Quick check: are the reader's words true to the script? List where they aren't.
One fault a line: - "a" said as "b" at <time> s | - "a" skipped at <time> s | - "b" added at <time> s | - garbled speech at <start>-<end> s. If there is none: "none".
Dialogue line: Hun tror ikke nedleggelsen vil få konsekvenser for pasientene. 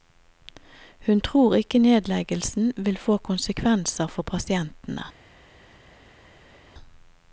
none